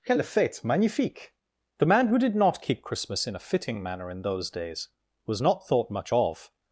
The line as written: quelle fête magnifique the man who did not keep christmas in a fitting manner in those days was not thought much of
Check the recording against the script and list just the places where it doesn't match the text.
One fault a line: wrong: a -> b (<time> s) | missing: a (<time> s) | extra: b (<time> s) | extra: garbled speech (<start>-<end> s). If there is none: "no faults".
no faults